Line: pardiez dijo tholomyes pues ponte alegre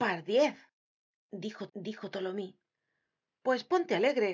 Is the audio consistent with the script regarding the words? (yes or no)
no